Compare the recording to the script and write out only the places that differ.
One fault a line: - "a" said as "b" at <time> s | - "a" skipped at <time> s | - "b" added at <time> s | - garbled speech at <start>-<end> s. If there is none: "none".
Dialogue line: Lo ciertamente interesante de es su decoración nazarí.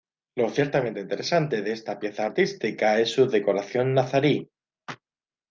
- "esta pieza artística" added at 1.7 s